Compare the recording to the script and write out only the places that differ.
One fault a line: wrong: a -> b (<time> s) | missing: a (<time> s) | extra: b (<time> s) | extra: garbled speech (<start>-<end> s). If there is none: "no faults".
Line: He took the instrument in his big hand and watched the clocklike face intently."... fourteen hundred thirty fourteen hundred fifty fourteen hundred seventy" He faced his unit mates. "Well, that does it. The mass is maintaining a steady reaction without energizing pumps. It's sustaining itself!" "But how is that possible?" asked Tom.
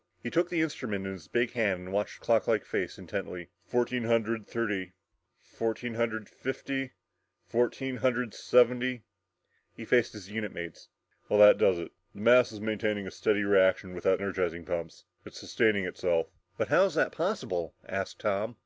no faults